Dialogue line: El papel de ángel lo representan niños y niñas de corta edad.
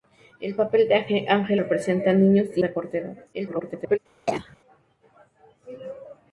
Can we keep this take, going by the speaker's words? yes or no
no